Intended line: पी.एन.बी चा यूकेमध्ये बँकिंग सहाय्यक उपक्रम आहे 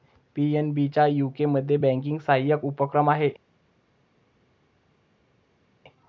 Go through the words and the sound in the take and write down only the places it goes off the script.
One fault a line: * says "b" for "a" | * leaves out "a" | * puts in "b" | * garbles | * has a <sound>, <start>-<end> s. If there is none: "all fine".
all fine